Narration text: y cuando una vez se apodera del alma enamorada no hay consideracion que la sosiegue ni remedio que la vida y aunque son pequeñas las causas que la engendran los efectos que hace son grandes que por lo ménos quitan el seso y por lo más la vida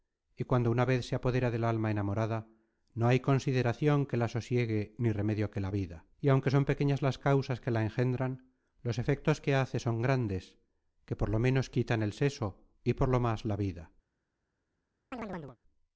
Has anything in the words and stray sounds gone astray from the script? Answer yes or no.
yes